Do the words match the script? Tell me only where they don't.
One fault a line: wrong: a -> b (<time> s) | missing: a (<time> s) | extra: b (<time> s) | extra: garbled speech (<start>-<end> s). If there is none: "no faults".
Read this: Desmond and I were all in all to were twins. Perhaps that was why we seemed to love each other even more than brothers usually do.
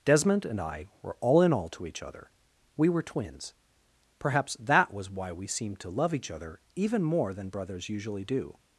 extra: each other We (1.9 s)